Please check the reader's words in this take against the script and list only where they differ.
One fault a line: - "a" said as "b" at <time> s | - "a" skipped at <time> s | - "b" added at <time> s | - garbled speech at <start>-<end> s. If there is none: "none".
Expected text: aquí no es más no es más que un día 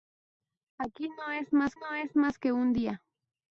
none